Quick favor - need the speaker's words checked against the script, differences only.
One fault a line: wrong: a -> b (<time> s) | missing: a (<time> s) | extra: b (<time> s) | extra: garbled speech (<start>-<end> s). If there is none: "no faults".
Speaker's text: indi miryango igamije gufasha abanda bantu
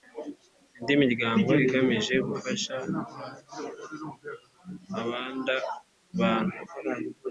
no faults